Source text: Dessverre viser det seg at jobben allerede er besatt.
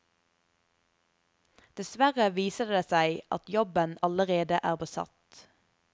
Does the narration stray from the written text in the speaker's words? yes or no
no